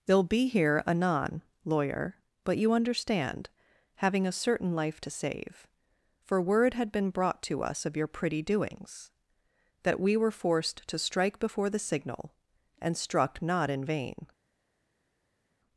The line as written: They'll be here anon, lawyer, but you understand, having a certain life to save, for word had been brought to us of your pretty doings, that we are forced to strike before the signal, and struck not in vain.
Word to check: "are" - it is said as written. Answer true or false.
false